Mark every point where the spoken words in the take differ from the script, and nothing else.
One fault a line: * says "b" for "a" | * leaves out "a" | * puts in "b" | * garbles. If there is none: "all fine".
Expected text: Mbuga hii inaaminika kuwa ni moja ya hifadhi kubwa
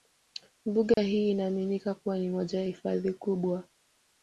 all fine